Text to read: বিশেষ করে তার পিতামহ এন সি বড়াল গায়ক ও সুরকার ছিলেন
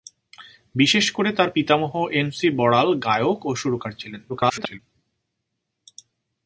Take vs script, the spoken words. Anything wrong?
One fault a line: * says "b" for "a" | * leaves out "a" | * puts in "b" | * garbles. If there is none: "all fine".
* garbles